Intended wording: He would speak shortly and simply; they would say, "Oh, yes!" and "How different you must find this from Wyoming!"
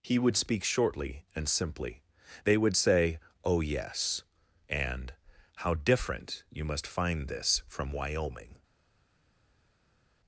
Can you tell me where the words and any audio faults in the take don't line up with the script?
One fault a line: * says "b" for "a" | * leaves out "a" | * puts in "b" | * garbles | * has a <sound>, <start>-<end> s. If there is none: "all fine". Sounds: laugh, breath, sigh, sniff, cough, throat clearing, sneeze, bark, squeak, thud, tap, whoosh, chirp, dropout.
all fine